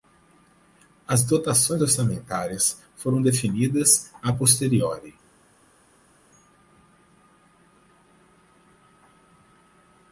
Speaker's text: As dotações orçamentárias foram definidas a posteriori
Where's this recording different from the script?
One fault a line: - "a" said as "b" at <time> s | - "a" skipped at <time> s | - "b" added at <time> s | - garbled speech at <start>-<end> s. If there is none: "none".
none